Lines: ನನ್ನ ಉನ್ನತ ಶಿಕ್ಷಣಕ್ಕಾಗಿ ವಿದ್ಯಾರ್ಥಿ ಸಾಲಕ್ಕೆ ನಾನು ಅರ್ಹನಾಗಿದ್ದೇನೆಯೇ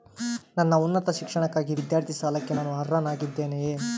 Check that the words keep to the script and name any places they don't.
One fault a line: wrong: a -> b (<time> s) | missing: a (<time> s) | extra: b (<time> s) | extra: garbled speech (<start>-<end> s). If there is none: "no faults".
no faults